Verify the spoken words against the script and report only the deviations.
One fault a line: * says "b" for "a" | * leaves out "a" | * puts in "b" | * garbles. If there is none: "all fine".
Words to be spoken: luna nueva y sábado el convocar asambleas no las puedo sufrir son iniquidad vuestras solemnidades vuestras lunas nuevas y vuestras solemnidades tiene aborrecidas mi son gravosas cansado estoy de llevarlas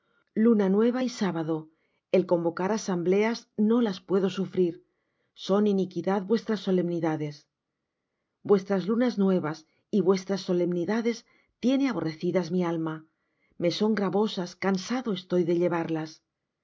* puts in "alma me"